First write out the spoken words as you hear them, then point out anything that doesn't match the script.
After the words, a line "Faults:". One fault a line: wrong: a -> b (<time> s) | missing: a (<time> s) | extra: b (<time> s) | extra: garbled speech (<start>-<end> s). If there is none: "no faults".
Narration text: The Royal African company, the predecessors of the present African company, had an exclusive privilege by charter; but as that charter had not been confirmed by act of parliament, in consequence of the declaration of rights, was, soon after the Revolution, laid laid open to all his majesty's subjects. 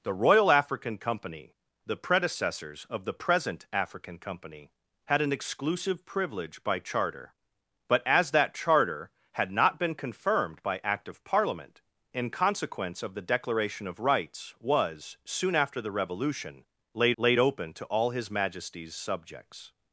The Royal African company, the predecessors of the present African company, had an exclusive privilege by charter; but as that charter had not been confirmed by act of parliament, in consequence of the declaration of rights, was, soon after the Revolution, laid laid open to all his majesty's subjects.
Faults:
no faults